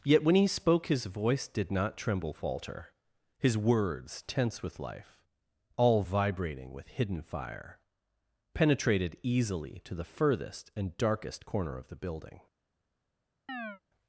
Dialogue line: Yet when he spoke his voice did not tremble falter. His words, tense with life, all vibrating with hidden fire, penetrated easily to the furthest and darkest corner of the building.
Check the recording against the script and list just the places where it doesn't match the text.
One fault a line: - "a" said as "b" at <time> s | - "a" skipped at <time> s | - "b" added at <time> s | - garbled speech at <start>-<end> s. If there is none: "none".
none